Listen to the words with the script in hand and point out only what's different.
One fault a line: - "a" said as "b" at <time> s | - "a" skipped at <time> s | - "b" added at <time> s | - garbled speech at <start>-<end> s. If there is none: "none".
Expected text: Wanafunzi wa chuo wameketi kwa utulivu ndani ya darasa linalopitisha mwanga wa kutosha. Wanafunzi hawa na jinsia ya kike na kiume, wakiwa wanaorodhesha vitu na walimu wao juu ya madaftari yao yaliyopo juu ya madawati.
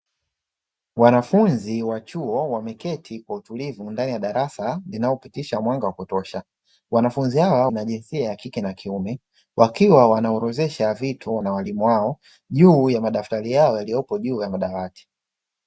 none